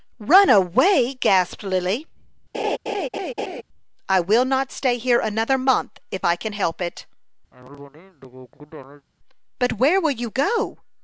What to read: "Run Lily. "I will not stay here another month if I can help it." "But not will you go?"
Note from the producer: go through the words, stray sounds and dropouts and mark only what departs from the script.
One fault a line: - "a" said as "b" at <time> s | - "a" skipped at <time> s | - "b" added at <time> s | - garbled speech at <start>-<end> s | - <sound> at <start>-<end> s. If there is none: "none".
- "away gasped" added at 0.5 s
- laugh at 2.5-3.6 s
- cough at 7.5-9.1 s
- "not" said as "where" at 9.7 s